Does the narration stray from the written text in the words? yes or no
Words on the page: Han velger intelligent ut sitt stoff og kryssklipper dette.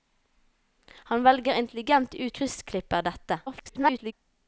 yes